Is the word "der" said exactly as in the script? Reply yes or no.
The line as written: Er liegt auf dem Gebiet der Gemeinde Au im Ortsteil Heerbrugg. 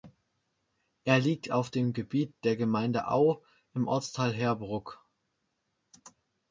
yes